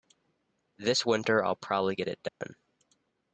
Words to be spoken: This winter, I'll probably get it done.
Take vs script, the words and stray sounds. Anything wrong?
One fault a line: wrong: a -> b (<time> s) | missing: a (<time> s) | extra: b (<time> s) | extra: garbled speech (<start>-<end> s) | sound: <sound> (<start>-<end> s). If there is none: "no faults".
sound: dropout (2.3-2.4 s)